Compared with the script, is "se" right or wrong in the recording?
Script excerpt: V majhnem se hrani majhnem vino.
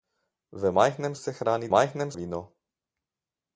right